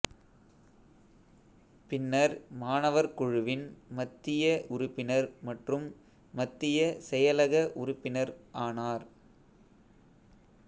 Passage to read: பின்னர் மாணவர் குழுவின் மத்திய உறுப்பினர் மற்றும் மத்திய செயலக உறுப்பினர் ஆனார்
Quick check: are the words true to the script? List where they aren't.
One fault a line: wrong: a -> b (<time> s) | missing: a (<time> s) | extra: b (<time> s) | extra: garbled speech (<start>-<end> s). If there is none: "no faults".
no faults